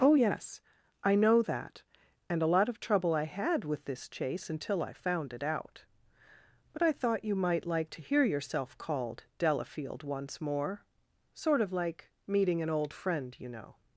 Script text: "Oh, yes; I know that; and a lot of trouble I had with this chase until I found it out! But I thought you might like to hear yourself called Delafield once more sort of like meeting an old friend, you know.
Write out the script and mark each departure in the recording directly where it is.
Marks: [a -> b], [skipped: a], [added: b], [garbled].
"Oh, yes; I know that; and a lot of trouble I had with this chase until I found it out! But I thought you might like to hear yourself called Delafield once more sort of like meeting an old friend, you know.